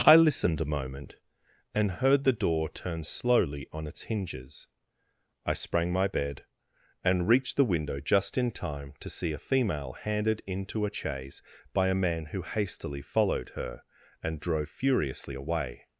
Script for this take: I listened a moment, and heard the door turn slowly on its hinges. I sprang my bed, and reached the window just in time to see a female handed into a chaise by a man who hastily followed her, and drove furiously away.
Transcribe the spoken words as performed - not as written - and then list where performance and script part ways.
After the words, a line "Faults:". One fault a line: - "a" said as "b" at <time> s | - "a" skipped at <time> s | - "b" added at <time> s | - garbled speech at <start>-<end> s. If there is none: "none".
I listened a moment, and heard the door turn slowly on its hinges. I sprang my bed, and reached the window just in time to see a female handed into a chaise by a man who hastily followed her, and drove furiously away.
Faults:
none